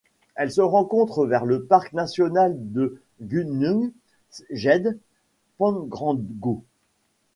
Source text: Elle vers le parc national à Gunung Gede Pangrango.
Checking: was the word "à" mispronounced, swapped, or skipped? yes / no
yes